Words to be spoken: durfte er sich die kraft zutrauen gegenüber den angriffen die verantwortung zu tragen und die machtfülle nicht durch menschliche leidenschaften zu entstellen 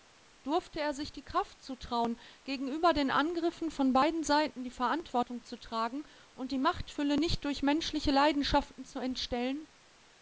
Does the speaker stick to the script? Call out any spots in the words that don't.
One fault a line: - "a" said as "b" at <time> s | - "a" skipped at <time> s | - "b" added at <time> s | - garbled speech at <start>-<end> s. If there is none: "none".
- "von beiden seiten" added at 3.7 s